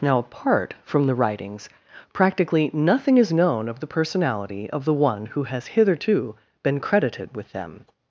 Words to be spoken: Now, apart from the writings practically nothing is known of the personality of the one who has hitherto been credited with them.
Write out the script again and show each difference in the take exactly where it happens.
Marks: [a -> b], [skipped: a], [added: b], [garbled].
Now, apart from the writings practically nothing is known of the personality of the one who has hitherto been credited with them.